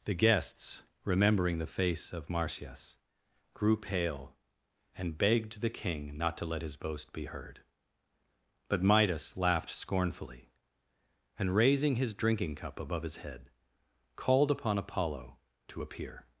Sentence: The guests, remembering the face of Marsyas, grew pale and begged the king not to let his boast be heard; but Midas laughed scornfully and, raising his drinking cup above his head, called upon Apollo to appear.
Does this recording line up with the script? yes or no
yes